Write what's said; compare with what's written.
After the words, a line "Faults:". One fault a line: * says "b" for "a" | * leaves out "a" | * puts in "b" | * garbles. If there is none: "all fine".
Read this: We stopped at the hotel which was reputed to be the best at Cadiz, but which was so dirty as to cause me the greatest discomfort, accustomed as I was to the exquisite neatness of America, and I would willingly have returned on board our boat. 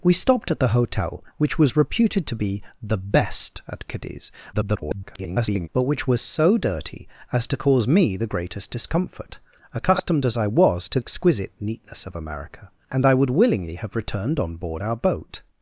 We stopped at the hotel which was reputed to be the best at Cadiz, [garbled] but which was so dirty as to cause me the greatest discomfort, accustomed as I was to exquisite neatness of America, and I would willingly have returned on board our boat.
Faults:
* garbles
* leaves out "the"